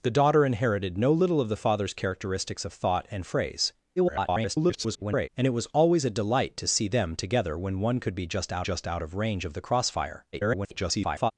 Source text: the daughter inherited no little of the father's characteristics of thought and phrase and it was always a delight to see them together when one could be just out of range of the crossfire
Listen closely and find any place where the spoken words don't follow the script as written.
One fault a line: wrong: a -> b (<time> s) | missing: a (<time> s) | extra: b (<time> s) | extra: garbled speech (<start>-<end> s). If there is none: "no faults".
extra: garbled speech (4.0-5.3 s)
extra: just out (8.6 s)
extra: garbled speech (10.3-11.3 s)